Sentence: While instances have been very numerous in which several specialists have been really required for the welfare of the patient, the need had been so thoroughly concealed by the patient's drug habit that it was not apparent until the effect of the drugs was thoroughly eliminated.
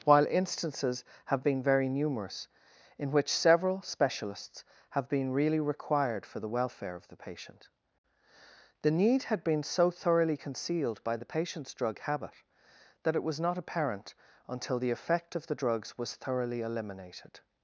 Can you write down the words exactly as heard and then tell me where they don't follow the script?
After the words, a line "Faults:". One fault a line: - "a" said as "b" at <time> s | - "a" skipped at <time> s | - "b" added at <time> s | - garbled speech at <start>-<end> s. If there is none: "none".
While instances have been very numerous in which several specialists have been really required for the welfare of the patient, the need had been so thoroughly concealed by the patient's drug habit that it was not apparent until the effect of the drugs was thoroughly eliminated.
Faults:
none